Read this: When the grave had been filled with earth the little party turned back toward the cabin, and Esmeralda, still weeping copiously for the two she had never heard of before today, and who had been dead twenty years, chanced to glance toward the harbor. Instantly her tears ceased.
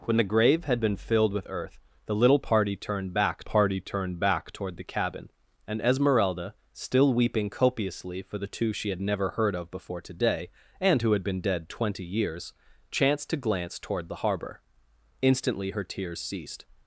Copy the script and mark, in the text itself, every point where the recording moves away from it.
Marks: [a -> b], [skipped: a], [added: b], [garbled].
When the grave had been filled with earth the little party turned back [added: party turned back] toward the cabin, and Esmeralda, still weeping copiously for the two she had never heard of before today, and who had been dead twenty years, chanced to glance toward the harbor. Instantly her tears ceased.